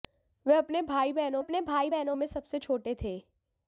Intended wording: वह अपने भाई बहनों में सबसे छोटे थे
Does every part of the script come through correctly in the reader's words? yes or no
no